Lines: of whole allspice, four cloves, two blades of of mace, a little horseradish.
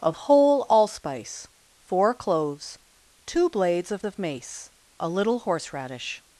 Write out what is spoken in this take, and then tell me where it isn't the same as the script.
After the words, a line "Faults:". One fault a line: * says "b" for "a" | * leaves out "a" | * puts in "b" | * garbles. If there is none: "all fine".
of whole allspice, four cloves, two blades of of mace, a little horseradish.
Faults:
all fine